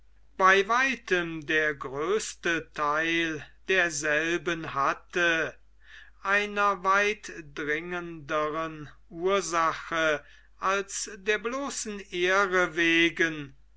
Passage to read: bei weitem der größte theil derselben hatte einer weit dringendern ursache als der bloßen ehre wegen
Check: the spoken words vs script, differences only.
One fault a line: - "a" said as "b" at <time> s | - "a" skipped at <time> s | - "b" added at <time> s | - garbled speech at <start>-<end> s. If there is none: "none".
none